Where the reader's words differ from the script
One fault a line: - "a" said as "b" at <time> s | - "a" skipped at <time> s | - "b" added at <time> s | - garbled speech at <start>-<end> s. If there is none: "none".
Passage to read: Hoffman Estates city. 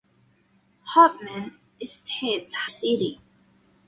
none